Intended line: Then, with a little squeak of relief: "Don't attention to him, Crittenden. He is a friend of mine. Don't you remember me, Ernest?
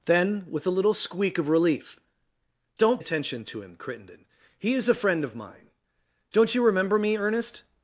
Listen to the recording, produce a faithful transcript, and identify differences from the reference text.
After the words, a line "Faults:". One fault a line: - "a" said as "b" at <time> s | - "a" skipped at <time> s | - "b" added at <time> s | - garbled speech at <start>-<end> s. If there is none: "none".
Then, with a little squeak of relief: "Don't attention to him, Crittenden. He is a friend of mine. Don't you remember me, Ernest?
Faults:
none